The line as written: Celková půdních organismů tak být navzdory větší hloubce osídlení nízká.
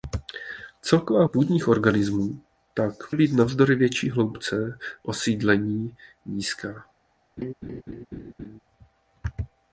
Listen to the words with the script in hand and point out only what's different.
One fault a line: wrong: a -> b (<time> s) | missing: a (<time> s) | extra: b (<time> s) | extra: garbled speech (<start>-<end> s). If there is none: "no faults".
no faults